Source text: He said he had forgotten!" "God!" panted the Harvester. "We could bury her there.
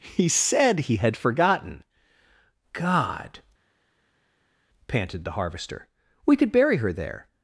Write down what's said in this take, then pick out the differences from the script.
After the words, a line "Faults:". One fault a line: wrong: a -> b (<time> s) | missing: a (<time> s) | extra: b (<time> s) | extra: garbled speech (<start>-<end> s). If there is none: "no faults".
He said he had forgotten!" "God!" panted the Harvester. "We could bury her there.
Faults:
no faults